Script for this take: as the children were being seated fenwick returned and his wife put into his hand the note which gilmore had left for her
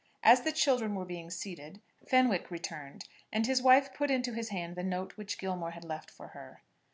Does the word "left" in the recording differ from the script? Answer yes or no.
no